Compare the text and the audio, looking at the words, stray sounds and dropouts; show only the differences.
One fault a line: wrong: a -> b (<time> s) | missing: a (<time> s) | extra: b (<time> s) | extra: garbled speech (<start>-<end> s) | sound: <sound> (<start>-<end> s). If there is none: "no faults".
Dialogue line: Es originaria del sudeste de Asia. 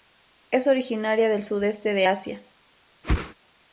sound: whoosh (3.0-3.3 s)